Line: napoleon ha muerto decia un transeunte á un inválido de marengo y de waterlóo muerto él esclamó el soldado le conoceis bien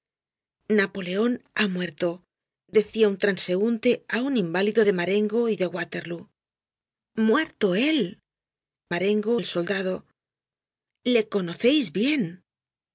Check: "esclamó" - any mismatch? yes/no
yes